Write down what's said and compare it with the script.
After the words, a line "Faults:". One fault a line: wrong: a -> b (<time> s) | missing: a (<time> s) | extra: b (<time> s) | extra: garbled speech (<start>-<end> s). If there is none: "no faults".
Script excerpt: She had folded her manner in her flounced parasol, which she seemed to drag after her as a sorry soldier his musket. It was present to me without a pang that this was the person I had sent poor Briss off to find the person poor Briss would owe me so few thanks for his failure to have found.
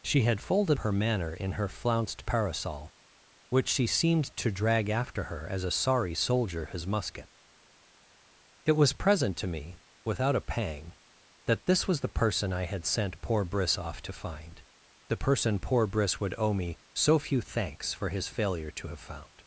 She had folded her manner in her flounced parasol, which she seemed to drag after her as a sorry soldier his musket. It was present to me without a pang that this was the person I had sent poor Briss off to find the person poor Briss would owe me so few thanks for his failure to have found.
Faults:
no faults